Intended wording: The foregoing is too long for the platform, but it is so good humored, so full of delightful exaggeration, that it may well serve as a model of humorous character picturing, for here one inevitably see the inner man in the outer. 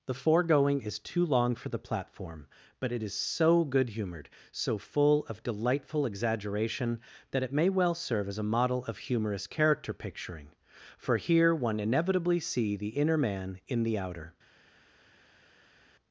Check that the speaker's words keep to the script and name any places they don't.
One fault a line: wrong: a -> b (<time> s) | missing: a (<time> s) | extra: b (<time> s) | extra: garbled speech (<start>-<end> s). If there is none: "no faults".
no faults